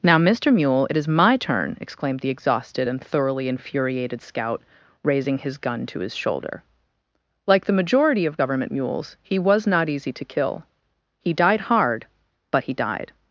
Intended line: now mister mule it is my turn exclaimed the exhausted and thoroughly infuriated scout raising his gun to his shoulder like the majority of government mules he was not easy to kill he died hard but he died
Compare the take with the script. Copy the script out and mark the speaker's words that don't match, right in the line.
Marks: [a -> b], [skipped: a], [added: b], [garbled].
now mister mule it is my turn exclaimed the exhausted and thoroughly infuriated scout raising his gun to his shoulder like the majority of government mules he was not easy to kill he died hard but he died